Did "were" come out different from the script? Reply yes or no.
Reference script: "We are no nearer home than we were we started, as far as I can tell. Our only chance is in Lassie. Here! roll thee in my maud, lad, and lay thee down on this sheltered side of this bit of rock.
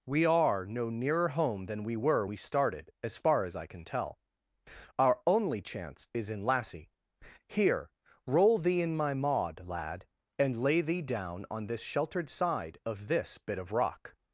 no